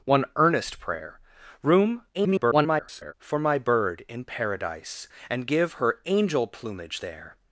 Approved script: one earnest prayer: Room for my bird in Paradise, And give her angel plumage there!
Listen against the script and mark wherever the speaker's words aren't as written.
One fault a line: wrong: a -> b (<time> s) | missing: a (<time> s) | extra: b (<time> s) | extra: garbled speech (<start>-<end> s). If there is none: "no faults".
extra: garbled speech (2.1-3.1 s)